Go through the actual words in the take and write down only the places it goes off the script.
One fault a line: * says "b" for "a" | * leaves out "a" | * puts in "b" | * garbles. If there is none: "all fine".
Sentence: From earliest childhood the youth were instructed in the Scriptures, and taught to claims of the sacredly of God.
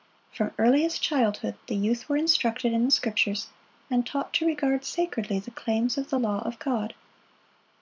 * puts in "regard sacredly the"
* says "law" for "sacredly"